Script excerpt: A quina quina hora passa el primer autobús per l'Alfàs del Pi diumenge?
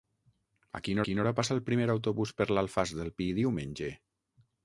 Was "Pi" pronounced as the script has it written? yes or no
yes